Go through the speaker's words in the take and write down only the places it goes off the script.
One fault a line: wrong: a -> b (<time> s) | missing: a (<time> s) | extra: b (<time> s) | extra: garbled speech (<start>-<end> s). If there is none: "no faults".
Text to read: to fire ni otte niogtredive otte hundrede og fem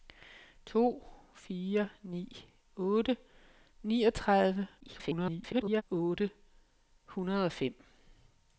extra: garbled speech (4.8-5.8 s)